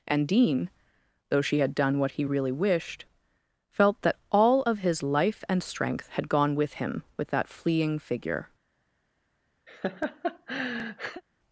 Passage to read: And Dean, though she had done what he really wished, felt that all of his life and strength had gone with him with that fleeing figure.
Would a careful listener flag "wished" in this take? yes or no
no